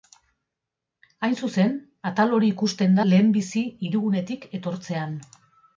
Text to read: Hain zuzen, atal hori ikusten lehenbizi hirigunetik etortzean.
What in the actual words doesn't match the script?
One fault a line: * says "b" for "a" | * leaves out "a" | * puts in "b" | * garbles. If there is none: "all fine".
all fine